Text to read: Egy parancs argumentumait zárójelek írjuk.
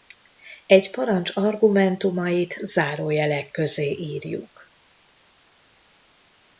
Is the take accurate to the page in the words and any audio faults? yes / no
no